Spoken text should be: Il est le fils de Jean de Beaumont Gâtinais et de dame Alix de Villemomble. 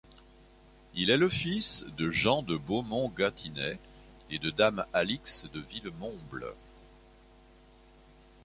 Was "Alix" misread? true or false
false